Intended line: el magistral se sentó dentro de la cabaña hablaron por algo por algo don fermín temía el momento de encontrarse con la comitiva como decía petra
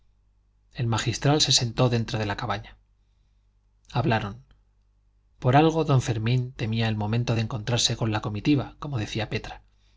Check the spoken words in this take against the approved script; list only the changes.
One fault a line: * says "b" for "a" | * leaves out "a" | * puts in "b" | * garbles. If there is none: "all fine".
* leaves out "por algo"